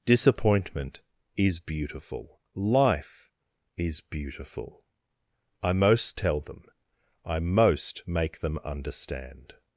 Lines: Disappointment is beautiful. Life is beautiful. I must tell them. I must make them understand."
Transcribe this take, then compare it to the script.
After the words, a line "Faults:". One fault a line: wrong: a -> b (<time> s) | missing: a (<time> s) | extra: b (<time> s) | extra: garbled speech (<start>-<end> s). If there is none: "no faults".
Disappointment is beautiful. Life is beautiful. I most tell them. I most make them understand."
Faults:
wrong: must -> most (5.7 s)
wrong: must -> most (7.4 s)